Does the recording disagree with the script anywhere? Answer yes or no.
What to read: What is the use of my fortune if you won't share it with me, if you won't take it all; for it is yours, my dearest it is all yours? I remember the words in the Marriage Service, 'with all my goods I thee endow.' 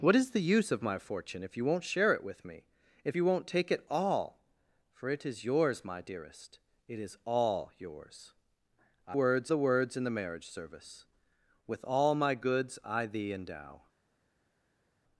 yes